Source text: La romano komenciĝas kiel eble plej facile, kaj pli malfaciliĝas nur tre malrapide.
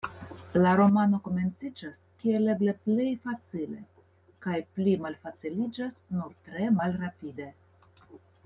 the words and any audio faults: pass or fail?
pass